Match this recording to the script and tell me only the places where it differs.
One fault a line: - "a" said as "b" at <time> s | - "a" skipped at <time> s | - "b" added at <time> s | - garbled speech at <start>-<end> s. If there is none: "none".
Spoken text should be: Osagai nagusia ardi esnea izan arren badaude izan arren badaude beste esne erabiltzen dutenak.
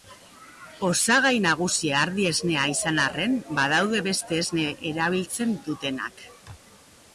- "izan arren badaude" skipped at 4.0 s